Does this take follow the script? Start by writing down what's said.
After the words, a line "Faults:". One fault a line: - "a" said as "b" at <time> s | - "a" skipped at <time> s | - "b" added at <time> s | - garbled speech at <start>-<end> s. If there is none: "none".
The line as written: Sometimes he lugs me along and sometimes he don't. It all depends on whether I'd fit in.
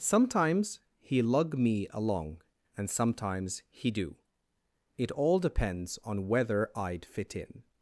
Sometimes he lug me along and sometimes he do. It all depends on whether I'd fit in.
Faults:
- "lugs" said as "lug" at 1.2 s
- "don't" said as "do" at 3.9 s